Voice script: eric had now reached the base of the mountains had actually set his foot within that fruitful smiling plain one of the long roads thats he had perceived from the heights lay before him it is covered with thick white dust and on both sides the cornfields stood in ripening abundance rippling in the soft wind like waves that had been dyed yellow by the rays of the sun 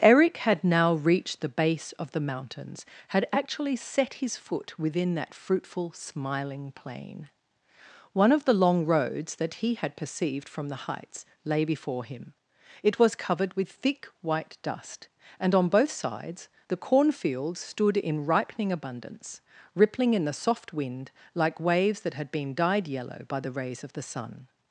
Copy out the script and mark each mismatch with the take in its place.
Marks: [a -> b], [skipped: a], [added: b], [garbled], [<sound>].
eric had now reached the base of the mountains had actually set his foot within that fruitful smiling plain one of the long roads [thats -> that] he had perceived from the heights lay before him it [is -> was] covered with thick white dust and on both sides the cornfields stood in ripening abundance rippling in the soft wind like waves that had been dyed yellow by the rays of the sun